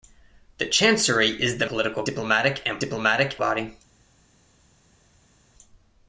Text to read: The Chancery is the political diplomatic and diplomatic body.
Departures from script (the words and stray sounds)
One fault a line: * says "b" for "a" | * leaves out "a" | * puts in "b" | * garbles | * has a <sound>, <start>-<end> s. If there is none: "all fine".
all fine